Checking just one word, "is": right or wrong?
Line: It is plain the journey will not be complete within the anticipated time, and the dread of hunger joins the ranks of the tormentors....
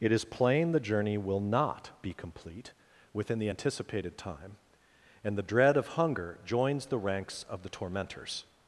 right